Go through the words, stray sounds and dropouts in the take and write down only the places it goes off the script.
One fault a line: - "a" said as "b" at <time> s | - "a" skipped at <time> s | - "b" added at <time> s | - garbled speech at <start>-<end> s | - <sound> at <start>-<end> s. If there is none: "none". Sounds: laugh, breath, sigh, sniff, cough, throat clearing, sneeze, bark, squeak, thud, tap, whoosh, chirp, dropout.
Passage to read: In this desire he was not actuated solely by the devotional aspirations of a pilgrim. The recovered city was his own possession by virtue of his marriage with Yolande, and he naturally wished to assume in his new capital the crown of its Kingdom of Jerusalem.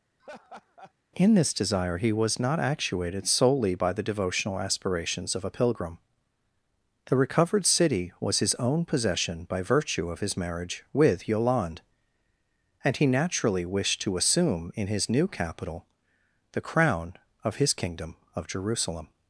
- laugh at 0.2-0.9 s
- "its" said as "his" at 17.6 s